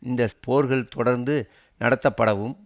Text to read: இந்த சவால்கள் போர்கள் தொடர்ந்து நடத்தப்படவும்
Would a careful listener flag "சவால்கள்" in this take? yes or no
yes